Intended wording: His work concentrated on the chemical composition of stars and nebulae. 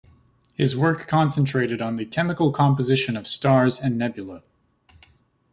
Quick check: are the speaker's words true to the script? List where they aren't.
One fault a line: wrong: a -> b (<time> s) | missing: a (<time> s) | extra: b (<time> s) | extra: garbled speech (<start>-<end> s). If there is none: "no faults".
no faults